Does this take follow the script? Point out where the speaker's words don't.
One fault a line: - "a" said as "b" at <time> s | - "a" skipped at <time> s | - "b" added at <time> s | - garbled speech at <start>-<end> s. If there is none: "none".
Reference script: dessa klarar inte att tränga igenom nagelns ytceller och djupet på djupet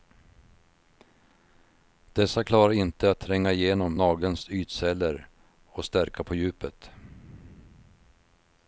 - "djupet" said as "stärka" at 5.8 s